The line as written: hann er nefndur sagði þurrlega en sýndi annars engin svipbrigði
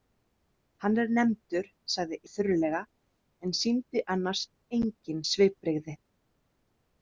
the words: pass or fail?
pass